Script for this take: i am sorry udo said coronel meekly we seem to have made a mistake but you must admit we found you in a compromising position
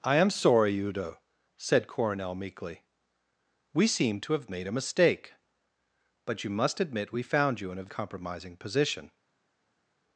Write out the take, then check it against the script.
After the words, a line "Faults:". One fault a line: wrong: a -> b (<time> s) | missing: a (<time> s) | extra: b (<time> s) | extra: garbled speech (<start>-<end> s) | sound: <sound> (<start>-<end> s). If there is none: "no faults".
i am sorry udo said coronel meekly we seem to have made a mistake but you must admit we found you in a compromising position
Faults:
no faults